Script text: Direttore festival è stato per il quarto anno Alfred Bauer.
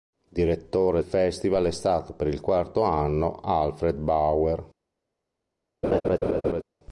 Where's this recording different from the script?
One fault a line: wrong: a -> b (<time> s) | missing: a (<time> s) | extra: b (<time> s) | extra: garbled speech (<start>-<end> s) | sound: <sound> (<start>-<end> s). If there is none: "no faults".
sound: laugh (5.8-6.6 s)